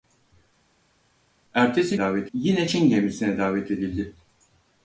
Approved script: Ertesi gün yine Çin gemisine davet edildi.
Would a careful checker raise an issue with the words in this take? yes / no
yes